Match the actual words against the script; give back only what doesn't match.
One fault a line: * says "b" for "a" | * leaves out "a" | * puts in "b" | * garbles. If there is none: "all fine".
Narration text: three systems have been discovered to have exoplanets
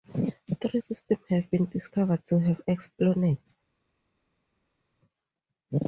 all fine